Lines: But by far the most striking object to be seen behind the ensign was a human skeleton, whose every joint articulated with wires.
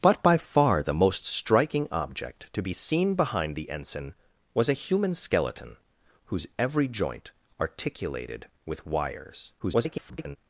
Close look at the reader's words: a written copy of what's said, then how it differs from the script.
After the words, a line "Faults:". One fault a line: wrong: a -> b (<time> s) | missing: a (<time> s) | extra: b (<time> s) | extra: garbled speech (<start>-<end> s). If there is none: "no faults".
But by far the most striking object to be seen behind the ensign was a human skeleton, whose every joint articulated with wires. [garbled]
Faults:
extra: garbled speech (9.6-10.4 s)